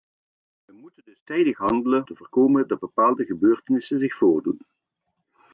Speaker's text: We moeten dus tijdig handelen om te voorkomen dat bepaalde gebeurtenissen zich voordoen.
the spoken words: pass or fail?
fail